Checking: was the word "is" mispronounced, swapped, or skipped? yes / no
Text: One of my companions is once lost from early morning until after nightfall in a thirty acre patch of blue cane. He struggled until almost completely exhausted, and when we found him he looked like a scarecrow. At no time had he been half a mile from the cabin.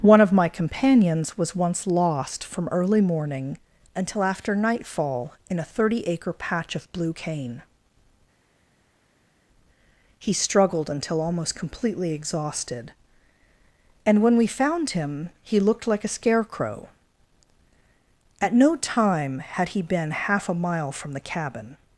yes